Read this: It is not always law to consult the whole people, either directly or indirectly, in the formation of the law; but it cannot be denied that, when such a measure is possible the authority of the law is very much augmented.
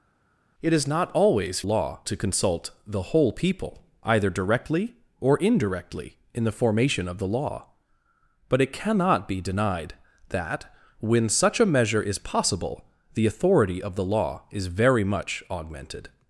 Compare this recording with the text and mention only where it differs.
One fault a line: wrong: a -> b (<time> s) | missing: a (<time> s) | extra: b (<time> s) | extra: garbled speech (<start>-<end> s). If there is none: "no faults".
no faults